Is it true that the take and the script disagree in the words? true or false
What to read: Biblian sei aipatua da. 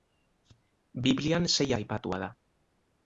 false